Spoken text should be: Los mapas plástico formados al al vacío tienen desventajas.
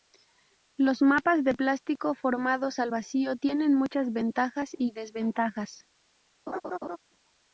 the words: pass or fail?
fail